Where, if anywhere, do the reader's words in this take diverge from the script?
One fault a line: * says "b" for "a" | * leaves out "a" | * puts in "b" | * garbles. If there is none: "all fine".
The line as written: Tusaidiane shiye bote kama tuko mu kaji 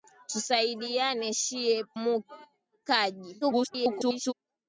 * leaves out "bote kama tuko"
* garbles